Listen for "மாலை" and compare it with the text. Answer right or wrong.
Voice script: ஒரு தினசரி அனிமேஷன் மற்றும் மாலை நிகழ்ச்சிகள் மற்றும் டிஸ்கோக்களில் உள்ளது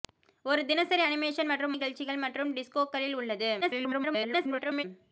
wrong